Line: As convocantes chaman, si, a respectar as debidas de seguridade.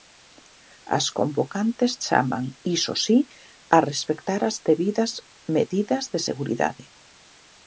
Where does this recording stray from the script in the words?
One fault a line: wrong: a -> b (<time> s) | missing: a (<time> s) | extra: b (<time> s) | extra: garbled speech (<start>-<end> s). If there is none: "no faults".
extra: iso (2.8 s)
extra: medidas (5.5 s)